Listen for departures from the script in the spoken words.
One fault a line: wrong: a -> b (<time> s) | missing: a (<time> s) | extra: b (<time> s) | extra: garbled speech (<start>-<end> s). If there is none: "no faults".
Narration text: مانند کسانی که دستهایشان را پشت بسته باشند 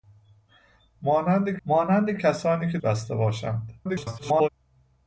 extra: مانند (1.6 s)
missing: دستهایشان را پشت (2.8 s)
extra: garbled speech (3.8-4.5 s)